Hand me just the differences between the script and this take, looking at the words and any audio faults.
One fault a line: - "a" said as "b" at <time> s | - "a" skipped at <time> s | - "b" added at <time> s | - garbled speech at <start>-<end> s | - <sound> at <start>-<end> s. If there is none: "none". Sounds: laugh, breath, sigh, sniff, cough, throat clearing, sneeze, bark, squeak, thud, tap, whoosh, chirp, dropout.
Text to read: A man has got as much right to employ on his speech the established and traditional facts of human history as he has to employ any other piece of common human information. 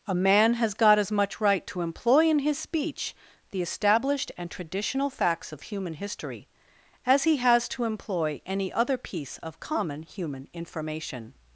- "on" said as "in" at 2.3 s